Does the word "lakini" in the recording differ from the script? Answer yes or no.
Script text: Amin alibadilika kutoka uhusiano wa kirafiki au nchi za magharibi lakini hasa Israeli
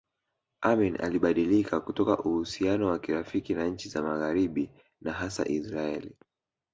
yes